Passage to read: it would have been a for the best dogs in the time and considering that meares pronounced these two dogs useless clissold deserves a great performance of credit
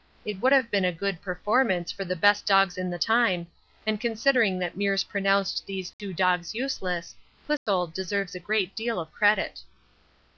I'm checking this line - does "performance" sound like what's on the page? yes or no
no